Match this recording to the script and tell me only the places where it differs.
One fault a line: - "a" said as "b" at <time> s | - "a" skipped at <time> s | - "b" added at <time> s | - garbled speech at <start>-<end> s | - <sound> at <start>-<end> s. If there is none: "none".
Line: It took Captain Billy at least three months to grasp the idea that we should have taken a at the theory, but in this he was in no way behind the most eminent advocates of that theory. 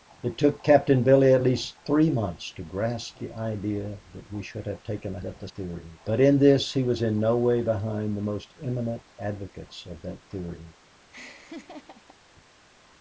- laugh at 11.1-12.2 s